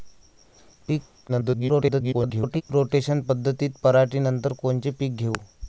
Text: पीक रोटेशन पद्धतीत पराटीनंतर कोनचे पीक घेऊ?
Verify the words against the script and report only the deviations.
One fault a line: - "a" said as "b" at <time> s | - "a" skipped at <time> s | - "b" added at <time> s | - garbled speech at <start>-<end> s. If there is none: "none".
- garbled speech at 1.3-2.6 s